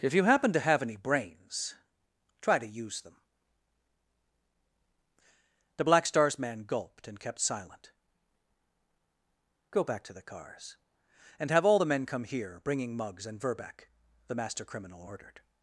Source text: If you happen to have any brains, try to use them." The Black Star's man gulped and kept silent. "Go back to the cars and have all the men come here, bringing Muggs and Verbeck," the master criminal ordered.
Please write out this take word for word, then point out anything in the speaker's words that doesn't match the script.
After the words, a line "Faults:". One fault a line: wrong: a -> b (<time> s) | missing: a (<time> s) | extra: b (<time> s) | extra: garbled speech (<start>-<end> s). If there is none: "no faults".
If you happen to have any brains, try to use them." The Black Star's man gulped and kept silent. "Go back to the cars and have all the men come here, bringing Muggs and Verbeck," the master criminal ordered.
Faults:
no faults